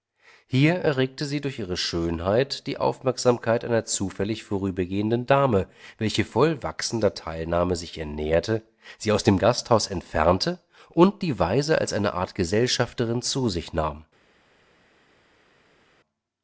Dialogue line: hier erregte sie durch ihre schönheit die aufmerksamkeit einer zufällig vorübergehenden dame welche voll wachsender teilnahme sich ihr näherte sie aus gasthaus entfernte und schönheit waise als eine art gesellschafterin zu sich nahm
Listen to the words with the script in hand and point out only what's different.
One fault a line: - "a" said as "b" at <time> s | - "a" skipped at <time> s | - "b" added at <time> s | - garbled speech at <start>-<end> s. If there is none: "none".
- "dem" added at 9.2 s
- "schönheit" said as "die" at 11.2 s